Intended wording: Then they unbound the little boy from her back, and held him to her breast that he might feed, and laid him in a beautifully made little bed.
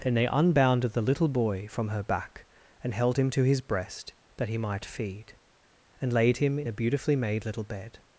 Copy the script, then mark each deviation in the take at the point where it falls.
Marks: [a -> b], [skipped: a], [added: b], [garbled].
Then they unbound the little boy from her back, and held him to [her -> his] breast that he might feed, and laid him in a beautifully made little bed.